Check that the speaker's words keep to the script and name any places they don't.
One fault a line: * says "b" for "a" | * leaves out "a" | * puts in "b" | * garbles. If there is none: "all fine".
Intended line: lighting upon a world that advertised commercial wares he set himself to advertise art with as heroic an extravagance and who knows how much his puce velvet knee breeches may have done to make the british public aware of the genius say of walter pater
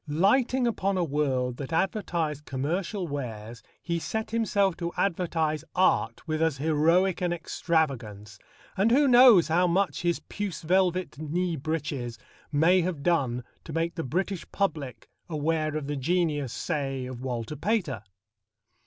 all fine